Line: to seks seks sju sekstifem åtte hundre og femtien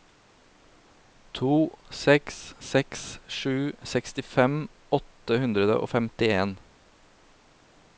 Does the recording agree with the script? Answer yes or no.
yes